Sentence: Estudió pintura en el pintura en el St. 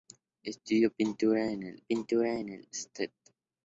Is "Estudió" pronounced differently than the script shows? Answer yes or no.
no